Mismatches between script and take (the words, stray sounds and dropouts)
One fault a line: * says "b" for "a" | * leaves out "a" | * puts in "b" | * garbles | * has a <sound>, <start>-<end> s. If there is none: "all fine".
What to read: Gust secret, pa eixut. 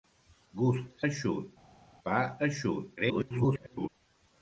* says "eixut" for "secret"
* garbles